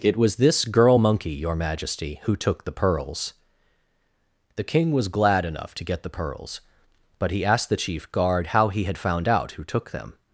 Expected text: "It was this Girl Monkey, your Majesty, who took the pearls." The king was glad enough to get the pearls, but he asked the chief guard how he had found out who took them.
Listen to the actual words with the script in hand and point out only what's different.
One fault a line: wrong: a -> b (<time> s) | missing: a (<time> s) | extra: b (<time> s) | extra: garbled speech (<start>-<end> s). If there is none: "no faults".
no faults